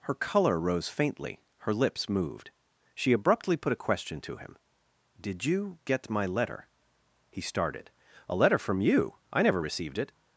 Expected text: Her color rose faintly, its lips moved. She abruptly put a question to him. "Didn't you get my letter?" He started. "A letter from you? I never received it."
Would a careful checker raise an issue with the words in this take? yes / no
yes